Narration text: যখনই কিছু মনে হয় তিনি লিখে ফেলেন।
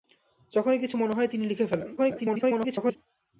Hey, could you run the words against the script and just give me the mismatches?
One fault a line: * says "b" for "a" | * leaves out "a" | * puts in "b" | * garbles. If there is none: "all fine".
* garbles